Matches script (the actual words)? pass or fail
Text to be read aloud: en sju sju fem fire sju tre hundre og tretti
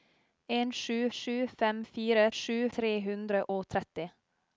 pass